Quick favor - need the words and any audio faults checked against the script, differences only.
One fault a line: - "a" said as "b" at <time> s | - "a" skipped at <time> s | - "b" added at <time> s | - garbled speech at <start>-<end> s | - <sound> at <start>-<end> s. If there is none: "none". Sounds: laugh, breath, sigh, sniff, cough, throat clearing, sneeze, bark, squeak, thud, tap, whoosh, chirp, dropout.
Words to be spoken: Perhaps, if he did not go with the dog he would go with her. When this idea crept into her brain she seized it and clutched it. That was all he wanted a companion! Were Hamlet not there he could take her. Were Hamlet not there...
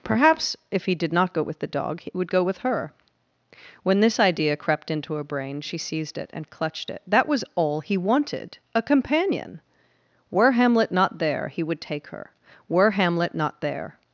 - "could" said as "would" at 11.6 s